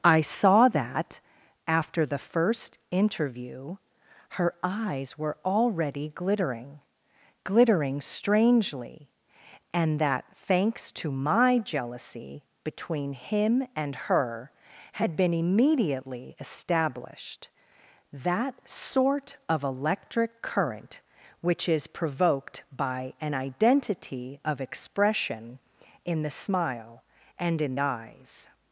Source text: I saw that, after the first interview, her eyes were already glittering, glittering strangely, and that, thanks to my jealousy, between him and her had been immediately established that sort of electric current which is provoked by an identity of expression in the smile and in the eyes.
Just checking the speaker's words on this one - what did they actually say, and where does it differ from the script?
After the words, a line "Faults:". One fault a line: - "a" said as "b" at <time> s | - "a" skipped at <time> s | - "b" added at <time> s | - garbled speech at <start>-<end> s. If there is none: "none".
I saw that, after the first interview, her eyes were already glittering, glittering strangely, and that, thanks to my jealousy, between him and her had been immediately established that sort of electric current which is provoked by an identity of expression in the smile and in eyes.
Faults:
- "the" skipped at 27.8 s